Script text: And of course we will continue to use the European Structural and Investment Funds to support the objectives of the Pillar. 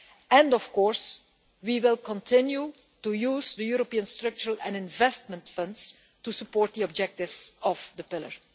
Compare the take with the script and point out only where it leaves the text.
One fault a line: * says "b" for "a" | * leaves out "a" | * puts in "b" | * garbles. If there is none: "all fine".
all fine